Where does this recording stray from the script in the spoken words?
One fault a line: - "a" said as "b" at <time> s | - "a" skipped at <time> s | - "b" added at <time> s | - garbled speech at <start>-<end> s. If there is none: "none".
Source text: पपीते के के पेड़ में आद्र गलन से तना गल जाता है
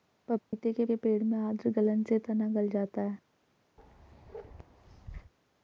none